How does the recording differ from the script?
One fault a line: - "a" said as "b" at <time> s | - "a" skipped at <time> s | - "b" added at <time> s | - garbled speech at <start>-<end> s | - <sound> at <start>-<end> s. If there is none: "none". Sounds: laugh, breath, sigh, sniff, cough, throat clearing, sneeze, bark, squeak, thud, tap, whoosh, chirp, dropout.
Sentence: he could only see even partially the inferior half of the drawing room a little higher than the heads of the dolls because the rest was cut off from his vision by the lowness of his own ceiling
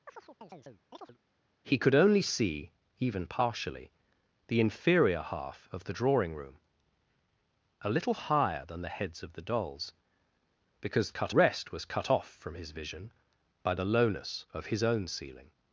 - chirp at 0.1-1.2 s
- "the" said as "cut" at 11.1 s